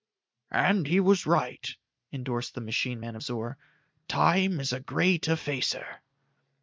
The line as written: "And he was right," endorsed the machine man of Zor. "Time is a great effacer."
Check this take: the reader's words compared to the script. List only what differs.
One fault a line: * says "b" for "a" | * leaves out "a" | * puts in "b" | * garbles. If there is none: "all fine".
all fine